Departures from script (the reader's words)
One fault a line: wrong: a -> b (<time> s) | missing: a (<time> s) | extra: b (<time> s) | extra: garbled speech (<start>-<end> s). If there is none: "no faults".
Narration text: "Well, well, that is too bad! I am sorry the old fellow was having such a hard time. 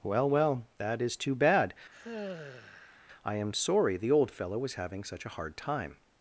no faults